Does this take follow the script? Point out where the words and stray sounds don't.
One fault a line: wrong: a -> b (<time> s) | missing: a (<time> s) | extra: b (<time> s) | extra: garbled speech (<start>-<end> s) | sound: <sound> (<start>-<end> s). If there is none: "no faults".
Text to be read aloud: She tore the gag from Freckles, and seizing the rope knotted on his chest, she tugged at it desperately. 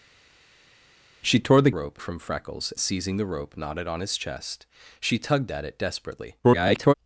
wrong: gag -> rope (1.7 s)
missing: and (2.7 s)
extra: garbled speech (6.4-6.9 s)